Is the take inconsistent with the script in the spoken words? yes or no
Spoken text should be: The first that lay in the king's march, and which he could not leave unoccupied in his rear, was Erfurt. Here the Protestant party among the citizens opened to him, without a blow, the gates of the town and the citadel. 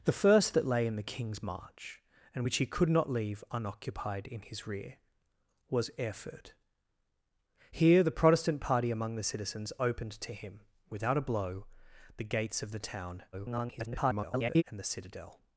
yes